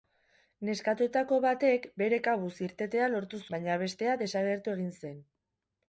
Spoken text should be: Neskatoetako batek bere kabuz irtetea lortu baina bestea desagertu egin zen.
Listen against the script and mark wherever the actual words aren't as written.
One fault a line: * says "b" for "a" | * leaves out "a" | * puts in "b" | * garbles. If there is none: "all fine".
all fine